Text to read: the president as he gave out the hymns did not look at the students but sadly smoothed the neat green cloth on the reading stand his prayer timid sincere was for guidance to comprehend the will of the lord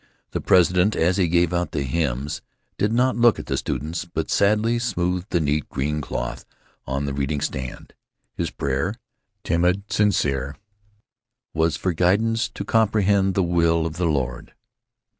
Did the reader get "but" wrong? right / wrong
right